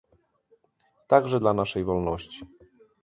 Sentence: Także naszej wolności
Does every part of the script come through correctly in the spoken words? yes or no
no